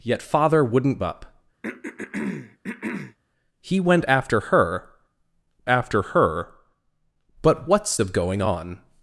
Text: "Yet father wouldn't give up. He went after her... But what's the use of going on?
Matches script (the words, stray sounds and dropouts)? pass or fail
fail